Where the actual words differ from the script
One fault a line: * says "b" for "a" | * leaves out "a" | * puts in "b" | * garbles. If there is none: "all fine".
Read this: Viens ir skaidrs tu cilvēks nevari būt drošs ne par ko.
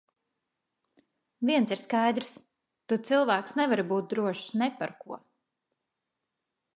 all fine